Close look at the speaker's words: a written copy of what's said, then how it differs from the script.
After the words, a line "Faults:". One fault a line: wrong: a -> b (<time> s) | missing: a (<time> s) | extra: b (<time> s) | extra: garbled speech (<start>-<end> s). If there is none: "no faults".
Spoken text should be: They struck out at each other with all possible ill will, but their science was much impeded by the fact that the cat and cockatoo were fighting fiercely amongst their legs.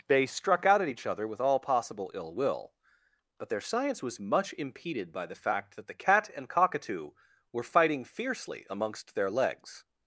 They struck out at each other with all possible ill will, but their science was much impeded by the fact that the cat and cockatoo were fighting fiercely amongst their legs.
Faults:
no faults